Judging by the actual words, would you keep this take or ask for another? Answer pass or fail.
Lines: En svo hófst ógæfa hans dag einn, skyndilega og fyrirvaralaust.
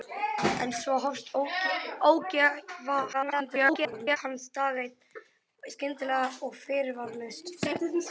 fail